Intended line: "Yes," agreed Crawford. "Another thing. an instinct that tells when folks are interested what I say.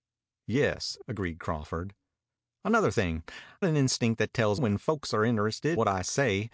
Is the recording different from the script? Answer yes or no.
no